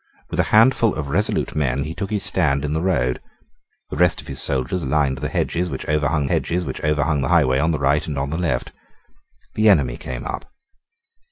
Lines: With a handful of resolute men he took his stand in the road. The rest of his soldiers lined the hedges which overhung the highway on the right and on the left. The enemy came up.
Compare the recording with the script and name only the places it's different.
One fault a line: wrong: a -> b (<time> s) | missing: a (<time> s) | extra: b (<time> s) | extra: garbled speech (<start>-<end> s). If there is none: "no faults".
extra: hedges which overhung (6.2 s)